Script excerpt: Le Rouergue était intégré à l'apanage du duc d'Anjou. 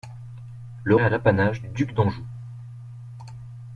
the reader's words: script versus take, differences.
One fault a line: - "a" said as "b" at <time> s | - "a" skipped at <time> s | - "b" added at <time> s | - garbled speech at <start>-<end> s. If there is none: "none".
- "Rouergue était intégré" skipped at 0.9 s